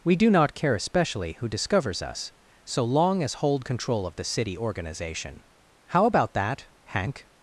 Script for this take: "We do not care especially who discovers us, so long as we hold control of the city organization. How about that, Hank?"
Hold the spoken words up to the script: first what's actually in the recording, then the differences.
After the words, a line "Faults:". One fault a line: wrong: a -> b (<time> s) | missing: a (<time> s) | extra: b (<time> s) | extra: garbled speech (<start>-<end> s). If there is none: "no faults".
"We do not care especially who discovers us, so long as hold control of the city organization. How about that, Hank?"
Faults:
missing: we (3.4 s)